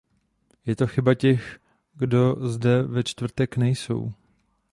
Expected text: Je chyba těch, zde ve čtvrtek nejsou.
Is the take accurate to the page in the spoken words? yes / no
no